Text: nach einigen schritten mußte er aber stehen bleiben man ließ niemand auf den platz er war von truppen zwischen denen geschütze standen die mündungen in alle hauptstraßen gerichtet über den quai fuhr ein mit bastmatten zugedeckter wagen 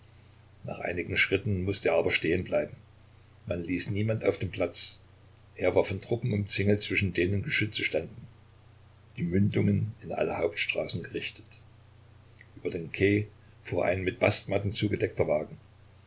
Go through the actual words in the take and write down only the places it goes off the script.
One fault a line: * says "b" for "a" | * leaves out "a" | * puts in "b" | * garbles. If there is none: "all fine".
* puts in "umzingelt"